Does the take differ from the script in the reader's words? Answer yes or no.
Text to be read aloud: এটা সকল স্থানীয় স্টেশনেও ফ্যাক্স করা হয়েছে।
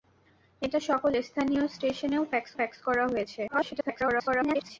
yes